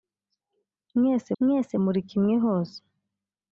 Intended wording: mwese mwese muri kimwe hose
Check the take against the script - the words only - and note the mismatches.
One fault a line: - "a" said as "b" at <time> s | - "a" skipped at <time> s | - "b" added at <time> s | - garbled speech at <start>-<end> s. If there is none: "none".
none